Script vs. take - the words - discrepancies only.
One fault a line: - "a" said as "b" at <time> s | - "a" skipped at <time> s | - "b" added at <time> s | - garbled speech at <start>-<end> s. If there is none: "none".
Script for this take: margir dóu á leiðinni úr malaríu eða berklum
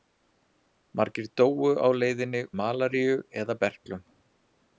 - "úr" skipped at 2.4 s